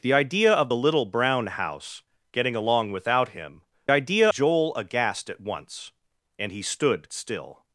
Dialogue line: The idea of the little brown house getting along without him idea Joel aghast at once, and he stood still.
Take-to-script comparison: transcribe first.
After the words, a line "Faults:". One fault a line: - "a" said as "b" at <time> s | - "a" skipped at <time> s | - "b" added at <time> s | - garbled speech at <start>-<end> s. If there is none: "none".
The idea of the little brown house getting along without him idea Joel aghast at once, and he stood still.
Faults:
none